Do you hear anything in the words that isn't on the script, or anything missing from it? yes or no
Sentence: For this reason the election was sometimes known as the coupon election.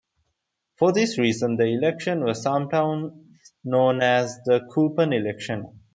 no